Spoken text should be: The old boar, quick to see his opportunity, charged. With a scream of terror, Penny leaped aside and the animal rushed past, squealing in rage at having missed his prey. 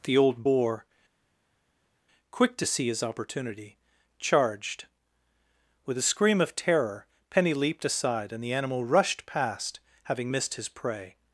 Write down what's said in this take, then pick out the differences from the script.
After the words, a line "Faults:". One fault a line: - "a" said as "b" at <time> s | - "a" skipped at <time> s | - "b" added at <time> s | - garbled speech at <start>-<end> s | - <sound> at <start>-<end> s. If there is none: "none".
The old boar, quick to see his opportunity, charged. With a scream of terror, Penny leaped aside and the animal rushed past, having missed his prey.
Faults:
- "squealing in rage at" skipped at 9.8 s